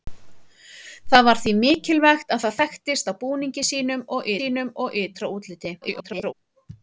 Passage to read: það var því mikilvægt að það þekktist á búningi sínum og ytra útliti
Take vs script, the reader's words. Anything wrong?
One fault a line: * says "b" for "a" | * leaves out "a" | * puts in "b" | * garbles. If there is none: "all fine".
* puts in "sínum og"
* garbles